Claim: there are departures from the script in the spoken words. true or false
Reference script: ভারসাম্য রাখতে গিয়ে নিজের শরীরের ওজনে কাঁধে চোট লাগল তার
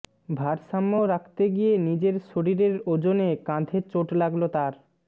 false